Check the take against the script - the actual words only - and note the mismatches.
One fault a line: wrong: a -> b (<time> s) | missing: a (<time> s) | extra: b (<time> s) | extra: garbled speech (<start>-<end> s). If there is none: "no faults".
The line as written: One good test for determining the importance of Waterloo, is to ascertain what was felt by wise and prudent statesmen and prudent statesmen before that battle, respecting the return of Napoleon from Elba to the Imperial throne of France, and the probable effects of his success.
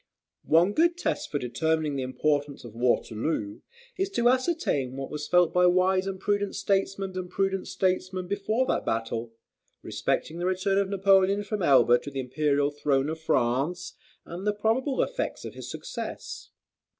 no faults